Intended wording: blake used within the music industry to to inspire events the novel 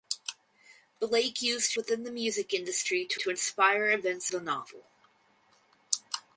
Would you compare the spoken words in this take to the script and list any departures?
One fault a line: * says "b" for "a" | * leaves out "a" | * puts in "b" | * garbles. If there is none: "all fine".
all fine